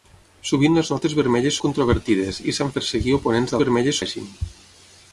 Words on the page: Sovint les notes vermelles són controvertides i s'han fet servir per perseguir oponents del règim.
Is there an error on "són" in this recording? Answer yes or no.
yes